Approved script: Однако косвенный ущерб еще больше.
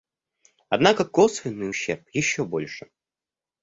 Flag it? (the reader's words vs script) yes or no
no